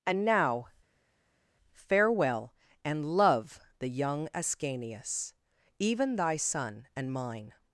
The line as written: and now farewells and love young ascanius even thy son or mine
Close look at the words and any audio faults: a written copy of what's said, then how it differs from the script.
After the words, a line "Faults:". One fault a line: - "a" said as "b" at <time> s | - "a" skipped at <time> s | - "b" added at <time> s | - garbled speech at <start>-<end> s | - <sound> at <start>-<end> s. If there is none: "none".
and now farewell and love the young ascanius even thy son and mine
Faults:
- "farewells" said as "farewell" at 1.7 s
- "the" added at 3.8 s
- "or" said as "and" at 7.0 s